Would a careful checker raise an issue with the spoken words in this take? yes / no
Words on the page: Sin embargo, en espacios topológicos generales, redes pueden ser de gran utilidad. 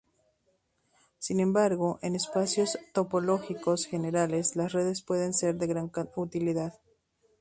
yes